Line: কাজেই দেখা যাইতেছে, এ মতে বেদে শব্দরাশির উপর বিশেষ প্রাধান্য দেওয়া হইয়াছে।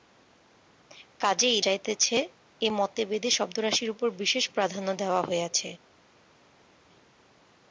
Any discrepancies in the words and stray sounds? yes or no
yes